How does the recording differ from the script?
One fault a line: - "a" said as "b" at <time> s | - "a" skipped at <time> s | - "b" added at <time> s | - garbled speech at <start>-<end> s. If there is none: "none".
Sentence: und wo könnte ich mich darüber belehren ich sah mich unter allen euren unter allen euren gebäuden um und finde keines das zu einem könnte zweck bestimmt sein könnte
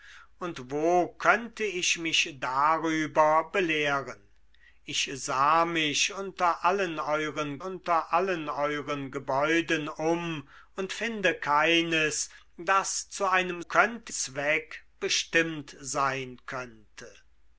none